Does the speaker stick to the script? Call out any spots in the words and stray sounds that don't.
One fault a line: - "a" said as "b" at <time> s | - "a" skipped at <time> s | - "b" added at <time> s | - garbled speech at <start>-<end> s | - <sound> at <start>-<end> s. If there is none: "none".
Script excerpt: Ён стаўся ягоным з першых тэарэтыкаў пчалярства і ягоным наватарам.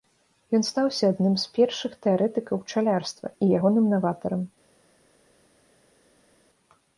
- "ягоным" said as "адным" at 1.1 s